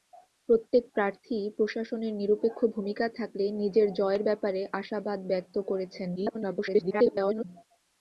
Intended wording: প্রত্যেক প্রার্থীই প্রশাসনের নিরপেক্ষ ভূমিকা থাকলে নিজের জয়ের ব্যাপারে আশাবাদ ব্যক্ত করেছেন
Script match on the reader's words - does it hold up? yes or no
no